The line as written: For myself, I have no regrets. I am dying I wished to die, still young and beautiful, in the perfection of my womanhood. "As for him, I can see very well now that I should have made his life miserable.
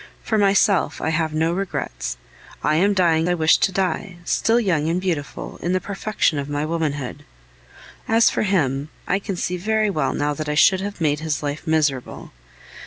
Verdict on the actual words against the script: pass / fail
pass